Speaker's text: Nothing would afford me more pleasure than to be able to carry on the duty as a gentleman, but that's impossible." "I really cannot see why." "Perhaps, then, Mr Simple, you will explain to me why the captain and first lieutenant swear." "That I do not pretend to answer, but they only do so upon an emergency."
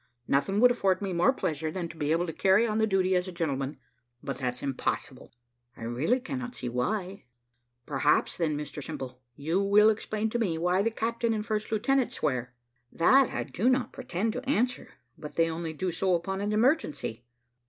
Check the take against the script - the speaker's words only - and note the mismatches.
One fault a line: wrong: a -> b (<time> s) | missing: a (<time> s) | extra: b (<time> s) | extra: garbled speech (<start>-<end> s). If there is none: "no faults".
no faults